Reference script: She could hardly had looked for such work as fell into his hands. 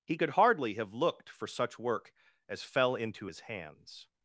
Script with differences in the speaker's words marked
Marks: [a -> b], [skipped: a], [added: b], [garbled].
[She -> He] could hardly [had -> have] looked for such work as fell into his hands.